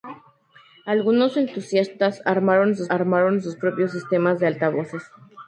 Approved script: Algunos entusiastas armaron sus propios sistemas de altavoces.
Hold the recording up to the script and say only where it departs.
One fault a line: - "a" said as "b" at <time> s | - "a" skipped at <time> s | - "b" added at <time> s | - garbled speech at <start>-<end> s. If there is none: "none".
- "armaron sus" added at 2.9 s